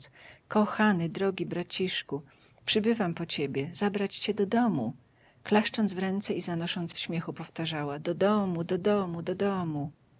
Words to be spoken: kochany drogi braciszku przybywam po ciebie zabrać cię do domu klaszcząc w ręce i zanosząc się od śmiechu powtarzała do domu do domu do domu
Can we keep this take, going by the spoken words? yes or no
no